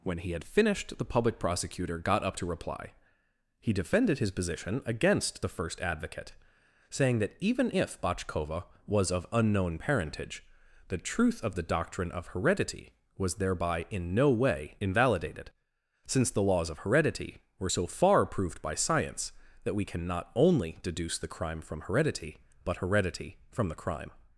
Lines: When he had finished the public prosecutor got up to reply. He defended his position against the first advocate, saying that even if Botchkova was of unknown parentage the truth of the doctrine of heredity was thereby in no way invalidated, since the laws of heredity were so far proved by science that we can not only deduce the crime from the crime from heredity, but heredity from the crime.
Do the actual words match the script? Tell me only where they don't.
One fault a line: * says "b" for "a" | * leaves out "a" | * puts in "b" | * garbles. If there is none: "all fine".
* leaves out "the crime from"